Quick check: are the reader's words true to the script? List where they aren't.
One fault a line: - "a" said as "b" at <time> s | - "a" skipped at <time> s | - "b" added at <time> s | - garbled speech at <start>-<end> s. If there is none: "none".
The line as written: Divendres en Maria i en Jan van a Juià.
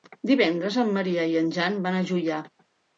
none